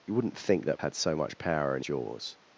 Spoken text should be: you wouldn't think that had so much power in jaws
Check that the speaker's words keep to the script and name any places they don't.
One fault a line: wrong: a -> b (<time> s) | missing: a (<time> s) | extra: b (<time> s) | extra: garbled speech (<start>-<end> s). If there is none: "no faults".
no faults